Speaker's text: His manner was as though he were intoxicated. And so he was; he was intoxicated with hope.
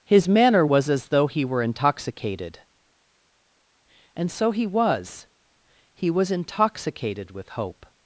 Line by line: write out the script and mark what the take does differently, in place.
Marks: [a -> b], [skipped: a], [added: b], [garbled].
His manner was as though he were intoxicated. And so he was; he was intoxicated with hope.